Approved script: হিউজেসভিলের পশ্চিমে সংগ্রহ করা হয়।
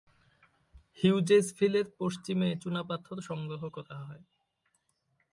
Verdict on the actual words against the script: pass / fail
fail